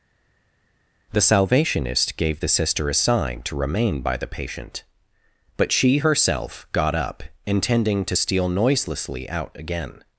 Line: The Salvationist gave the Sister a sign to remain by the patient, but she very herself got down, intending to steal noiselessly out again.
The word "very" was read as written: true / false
false